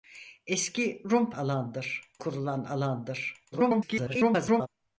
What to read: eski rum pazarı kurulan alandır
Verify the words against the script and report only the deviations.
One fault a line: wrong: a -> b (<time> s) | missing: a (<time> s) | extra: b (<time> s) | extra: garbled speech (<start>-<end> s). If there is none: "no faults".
wrong: pazarı -> alandır (1.3 s)
extra: garbled speech (3.5-4.7 s)